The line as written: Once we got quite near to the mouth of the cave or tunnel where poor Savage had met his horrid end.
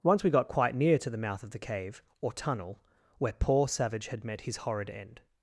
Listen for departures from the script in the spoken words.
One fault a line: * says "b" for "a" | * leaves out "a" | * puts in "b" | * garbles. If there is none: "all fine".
all fine